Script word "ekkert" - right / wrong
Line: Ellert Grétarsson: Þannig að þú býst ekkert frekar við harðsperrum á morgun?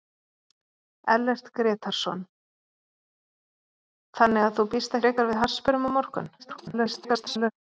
wrong